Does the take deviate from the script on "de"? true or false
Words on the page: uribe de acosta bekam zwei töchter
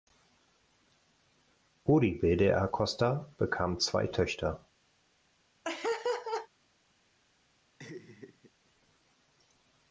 false